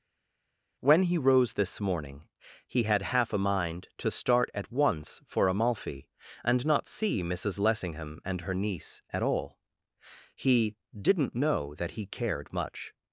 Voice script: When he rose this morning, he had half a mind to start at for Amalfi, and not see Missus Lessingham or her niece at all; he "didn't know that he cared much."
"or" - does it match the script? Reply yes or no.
no